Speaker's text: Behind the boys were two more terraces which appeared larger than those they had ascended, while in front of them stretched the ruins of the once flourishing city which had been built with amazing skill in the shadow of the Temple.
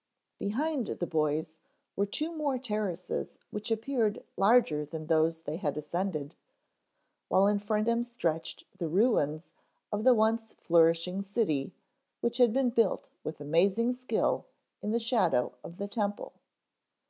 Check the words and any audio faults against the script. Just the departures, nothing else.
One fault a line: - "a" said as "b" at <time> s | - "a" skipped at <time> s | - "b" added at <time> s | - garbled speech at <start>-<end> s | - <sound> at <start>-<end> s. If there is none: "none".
- "of" skipped at 7.9 s